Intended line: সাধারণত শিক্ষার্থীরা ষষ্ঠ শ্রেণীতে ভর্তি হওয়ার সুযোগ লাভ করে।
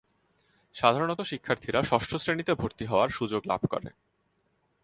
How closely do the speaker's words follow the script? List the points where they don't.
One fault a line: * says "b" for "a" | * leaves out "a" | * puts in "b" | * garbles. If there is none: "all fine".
all fine